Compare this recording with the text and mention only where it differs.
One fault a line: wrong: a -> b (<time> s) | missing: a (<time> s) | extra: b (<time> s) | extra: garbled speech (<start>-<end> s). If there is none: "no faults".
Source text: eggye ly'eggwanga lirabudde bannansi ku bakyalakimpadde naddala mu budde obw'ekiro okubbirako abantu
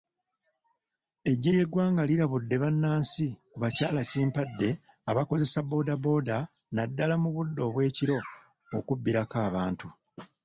extra: abakozesa boodabooda (5.1 s)